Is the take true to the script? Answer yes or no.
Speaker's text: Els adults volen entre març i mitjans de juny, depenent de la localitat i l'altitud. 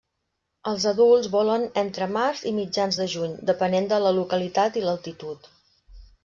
yes